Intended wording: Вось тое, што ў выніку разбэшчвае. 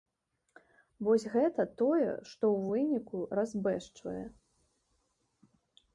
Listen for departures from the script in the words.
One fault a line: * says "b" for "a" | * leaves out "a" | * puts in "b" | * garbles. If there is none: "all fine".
* puts in "гэта"